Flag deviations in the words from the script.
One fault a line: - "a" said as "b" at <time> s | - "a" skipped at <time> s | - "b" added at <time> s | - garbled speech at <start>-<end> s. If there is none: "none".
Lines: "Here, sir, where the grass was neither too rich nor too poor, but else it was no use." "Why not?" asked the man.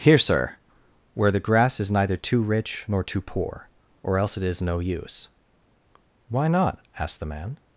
- "was" said as "is" at 1.8 s
- "but" said as "or" at 4.0 s
- "was" said as "is" at 4.4 s